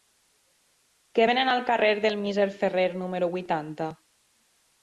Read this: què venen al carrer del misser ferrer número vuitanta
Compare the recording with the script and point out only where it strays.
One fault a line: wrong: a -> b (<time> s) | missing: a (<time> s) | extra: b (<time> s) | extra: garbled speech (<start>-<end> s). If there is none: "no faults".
no faults